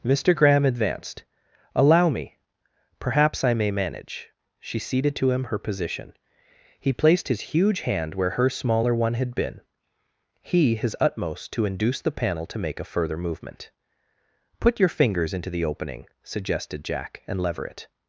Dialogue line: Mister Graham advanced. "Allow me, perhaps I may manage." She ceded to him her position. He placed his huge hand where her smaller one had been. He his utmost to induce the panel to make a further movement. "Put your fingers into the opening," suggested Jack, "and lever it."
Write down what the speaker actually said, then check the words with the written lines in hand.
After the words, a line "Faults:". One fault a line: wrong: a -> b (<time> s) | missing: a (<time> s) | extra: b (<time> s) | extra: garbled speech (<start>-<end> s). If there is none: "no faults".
Mister Graham advanced. "Allow me, perhaps I may manage." She ceded to him her position. He placed his huge hand where her smaller one had been. He his utmost to induce the panel to make a further movement. "Put your fingers into the opening," suggested Jack, "and lever it."
Faults:
no faults